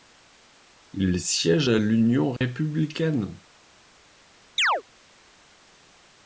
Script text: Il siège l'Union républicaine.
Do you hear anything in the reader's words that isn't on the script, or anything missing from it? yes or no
yes